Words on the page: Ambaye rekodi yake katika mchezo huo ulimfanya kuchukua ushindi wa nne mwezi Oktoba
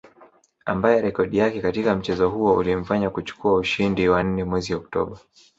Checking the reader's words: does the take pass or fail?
pass